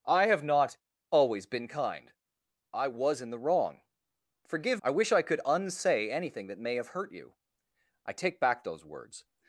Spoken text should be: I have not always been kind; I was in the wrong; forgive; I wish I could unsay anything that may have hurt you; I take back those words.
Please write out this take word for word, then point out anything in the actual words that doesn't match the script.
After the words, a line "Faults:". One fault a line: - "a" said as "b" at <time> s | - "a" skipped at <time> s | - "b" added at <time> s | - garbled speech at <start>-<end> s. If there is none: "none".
I have not always been kind; I was in the wrong; forgive; I wish I could unsay anything that may have hurt you; I take back those words.
Faults:
none